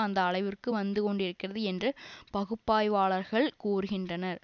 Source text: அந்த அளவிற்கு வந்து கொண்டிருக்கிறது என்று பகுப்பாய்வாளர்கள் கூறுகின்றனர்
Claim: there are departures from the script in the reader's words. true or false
false